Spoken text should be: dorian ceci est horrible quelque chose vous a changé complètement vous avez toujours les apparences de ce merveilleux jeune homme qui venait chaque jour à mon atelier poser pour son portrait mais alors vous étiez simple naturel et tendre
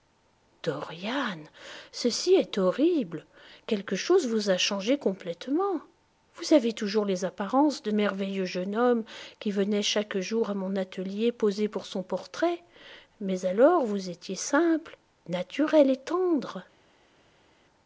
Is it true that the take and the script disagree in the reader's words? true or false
true